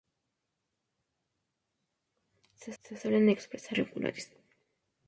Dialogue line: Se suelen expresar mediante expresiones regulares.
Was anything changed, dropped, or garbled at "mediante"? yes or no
yes